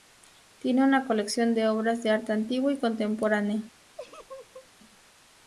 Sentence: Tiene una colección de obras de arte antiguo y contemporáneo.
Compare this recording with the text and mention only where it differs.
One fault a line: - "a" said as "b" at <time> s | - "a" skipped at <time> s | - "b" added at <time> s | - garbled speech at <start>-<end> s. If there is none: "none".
none